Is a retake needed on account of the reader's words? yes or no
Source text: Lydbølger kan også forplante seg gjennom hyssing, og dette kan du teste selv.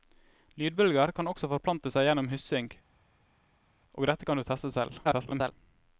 yes